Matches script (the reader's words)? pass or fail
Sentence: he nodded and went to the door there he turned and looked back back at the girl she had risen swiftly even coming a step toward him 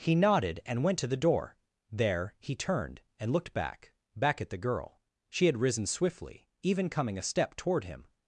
pass